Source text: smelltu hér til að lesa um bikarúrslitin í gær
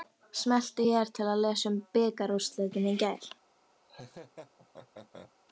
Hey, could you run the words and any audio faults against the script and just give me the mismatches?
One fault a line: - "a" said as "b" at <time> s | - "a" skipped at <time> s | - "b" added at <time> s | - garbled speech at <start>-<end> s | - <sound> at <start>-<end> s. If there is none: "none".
- laugh at 3.9-5.3 s